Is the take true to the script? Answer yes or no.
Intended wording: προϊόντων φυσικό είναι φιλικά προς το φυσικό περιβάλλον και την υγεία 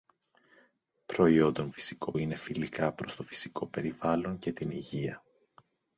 yes